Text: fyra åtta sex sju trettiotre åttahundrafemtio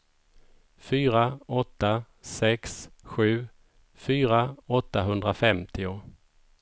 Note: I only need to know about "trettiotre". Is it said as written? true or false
false